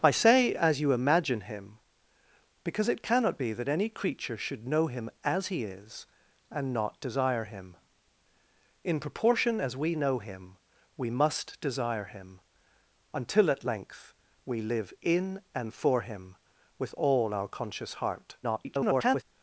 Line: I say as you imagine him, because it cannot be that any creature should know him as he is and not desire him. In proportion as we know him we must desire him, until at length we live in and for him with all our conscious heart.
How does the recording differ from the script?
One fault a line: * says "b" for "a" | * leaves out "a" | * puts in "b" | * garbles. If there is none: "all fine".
* garbles